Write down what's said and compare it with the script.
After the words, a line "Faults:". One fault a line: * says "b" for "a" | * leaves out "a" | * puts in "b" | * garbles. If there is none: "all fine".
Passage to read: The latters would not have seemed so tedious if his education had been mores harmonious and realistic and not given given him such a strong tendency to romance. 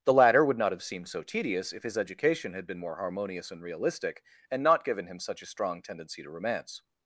The latter would not have seemed so tedious if his education had been more harmonious and realistic and not given him such a strong tendency to romance.
Faults:
* says "latter" for "latters"
* says "more" for "mores"
* leaves out "given"